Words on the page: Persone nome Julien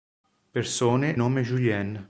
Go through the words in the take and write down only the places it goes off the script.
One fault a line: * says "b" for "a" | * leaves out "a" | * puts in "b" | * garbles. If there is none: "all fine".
all fine